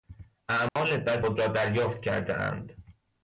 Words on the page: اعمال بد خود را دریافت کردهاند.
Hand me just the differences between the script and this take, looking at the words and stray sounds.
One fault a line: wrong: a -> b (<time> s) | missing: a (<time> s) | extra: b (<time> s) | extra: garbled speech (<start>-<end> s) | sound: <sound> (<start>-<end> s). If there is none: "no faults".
sound: dropout (0.7-0.8 s)